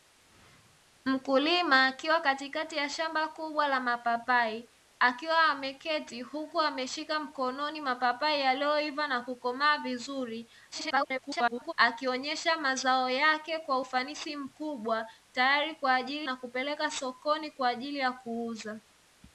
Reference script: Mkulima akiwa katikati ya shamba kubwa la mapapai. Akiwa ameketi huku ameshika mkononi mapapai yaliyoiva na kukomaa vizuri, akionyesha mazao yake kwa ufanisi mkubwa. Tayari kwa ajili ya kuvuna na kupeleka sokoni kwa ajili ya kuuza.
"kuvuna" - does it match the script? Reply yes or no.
no